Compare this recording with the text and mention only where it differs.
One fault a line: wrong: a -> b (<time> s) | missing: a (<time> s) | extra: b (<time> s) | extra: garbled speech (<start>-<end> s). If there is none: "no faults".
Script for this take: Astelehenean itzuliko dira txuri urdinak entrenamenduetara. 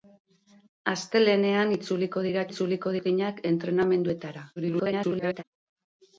wrong: txuri -> itzuliko (2.5 s)
extra: garbled speech (4.6-5.4 s)